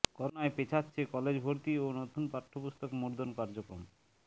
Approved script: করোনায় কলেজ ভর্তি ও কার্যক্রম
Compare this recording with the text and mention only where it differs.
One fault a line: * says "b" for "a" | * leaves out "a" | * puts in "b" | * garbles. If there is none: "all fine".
* puts in "পেছাচ্ছে"
* puts in "নতুন পাঠ্যপুস্তক মুদ্রণ"